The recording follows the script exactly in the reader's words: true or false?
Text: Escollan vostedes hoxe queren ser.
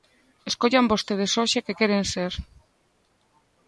false